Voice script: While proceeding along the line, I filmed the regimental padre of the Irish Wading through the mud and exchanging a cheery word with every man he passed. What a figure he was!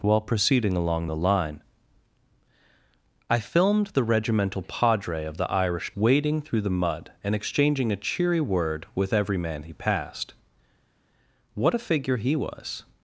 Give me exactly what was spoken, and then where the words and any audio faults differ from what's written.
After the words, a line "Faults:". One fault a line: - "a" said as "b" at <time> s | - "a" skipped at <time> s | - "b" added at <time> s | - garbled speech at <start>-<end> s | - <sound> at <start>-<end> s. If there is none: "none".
While proceeding along the line, I filmed the regimental padre of the Irish Wading through the mud and exchanging a cheery word with every man he passed. What a figure he was!
Faults:
none